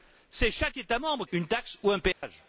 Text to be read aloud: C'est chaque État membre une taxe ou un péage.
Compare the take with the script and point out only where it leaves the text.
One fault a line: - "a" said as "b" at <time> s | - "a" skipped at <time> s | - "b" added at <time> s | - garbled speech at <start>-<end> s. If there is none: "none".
none